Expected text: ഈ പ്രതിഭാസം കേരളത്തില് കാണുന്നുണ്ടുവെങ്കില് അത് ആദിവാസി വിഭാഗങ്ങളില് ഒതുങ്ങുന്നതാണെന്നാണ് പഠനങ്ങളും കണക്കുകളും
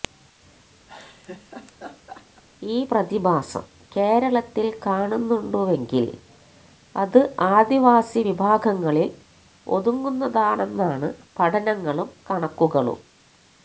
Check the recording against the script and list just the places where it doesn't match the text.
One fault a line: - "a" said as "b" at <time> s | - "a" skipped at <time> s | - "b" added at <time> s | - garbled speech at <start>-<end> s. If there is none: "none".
none